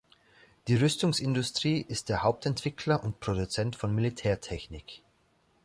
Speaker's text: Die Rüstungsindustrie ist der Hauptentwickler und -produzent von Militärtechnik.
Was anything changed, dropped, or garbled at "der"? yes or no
no